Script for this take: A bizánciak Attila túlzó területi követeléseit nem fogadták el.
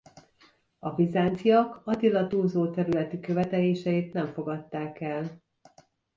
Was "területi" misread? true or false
false